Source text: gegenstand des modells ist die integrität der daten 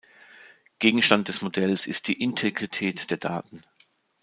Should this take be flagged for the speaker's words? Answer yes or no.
no